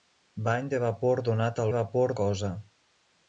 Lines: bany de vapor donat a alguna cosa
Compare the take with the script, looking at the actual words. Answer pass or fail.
fail